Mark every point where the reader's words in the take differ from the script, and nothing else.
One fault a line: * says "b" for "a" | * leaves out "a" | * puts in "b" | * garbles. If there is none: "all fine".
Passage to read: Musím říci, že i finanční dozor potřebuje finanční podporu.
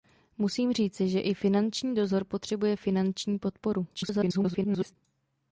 * garbles